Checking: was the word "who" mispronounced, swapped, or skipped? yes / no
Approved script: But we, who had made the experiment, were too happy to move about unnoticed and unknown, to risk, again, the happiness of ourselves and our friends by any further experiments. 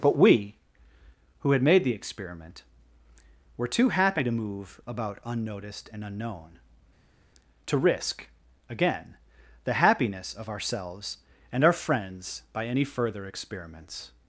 no